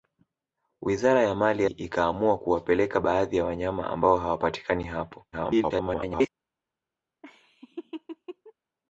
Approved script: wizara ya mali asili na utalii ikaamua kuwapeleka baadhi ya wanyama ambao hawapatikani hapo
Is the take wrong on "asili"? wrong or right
wrong